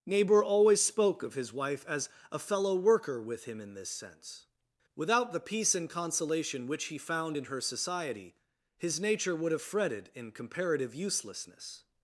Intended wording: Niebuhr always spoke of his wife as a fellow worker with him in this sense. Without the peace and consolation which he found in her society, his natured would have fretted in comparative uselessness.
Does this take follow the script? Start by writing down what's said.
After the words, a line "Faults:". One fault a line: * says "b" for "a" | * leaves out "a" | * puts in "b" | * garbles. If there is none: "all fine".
Niebuhr always spoke of his wife as a fellow worker with him in this sense. Without the peace and consolation which he found in her society, his nature would have fretted in comparative uselessness.
Faults:
* says "nature" for "natured"